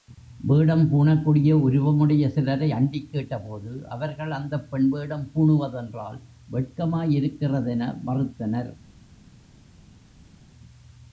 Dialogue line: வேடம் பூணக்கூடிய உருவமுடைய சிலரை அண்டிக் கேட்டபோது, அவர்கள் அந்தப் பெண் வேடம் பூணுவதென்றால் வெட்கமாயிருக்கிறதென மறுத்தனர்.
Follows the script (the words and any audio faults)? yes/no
yes